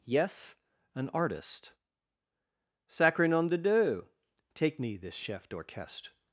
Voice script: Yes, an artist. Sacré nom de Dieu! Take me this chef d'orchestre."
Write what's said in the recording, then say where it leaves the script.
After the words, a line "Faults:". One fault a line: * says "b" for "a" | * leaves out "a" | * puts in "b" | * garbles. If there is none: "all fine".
Yes, an artist. Sacré nom de Dieu! Take me this chef d'orchestre."
Faults:
all fine